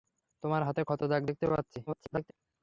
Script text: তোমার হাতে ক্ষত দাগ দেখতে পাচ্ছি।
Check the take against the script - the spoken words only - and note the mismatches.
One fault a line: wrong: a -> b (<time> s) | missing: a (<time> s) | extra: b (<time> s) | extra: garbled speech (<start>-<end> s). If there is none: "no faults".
extra: garbled speech (1.9-2.3 s)